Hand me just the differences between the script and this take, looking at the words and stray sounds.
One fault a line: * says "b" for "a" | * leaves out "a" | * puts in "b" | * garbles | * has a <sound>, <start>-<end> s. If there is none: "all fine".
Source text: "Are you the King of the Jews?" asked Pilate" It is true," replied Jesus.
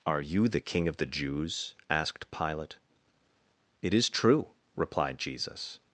all fine